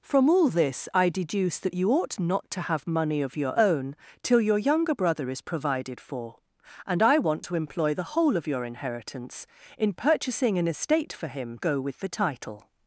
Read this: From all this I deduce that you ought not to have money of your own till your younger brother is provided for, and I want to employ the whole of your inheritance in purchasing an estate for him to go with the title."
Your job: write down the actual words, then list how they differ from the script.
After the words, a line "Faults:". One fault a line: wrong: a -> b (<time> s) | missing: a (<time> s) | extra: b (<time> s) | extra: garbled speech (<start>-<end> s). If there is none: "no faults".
From all this I deduce that you ought not to have money of your own till your younger brother is provided for, and I want to employ the whole of your inheritance in purchasing an estate for him go with the title."
Faults:
missing: to (11.6 s)